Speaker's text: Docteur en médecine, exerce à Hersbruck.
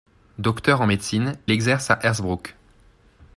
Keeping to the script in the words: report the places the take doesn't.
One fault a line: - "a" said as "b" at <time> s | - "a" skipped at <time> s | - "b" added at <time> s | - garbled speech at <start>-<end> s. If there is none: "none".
none